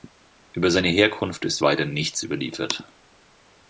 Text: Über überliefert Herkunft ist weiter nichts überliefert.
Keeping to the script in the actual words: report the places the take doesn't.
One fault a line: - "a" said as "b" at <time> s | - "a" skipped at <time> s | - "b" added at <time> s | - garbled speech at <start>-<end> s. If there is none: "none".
- "überliefert" said as "seine" at 0.7 s